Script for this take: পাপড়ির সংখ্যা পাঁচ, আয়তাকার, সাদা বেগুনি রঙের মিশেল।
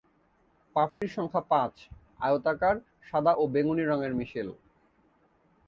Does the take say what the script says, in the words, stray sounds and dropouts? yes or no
no